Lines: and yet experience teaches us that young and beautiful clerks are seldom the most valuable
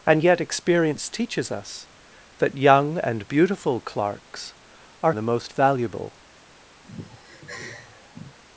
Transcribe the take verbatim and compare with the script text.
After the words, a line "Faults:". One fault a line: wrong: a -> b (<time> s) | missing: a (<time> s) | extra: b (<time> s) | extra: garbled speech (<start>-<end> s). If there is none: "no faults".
and yet experience teaches us that young and beautiful clerks are the most valuable
Faults:
missing: seldom (5.1 s)